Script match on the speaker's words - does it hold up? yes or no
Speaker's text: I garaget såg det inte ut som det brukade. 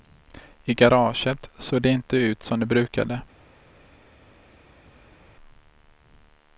yes